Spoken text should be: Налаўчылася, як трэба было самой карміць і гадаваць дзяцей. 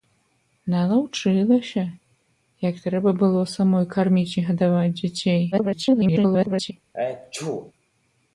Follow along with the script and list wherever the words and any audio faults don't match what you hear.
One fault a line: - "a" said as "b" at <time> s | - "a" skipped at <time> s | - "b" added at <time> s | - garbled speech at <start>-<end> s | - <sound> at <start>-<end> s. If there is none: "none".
- garbled speech at 5.5-6.7 s
- sneeze at 6.9-7.7 s